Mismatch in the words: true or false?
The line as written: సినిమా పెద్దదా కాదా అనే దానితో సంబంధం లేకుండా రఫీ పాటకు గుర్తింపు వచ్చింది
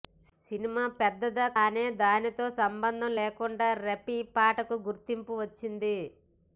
true